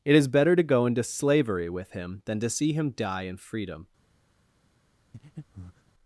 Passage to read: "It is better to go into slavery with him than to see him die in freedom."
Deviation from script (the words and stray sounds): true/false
true